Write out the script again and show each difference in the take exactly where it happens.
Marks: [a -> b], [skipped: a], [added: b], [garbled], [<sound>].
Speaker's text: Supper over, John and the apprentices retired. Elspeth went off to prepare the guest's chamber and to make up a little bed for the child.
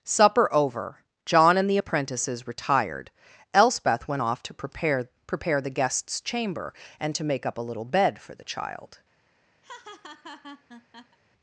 Supper over, John and the apprentices retired. Elspeth went off to prepare [added: prepare] the guest's chamber and to make up a little bed for the child. [laugh]